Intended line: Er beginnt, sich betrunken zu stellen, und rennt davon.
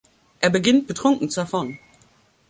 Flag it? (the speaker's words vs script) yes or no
yes